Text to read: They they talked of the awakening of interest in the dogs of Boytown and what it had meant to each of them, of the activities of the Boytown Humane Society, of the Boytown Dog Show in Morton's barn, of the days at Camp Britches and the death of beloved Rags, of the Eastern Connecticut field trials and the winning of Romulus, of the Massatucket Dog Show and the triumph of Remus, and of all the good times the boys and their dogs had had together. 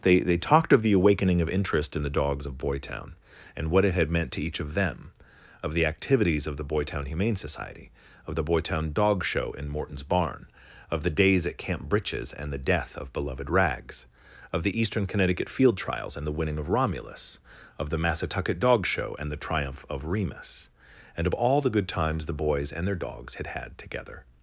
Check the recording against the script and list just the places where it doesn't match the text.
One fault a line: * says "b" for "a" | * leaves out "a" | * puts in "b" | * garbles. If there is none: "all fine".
all fine